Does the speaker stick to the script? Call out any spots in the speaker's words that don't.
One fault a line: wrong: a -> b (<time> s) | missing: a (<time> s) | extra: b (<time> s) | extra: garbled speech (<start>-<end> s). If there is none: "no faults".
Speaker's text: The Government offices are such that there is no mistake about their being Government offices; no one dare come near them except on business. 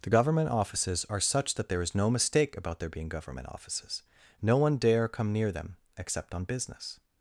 no faults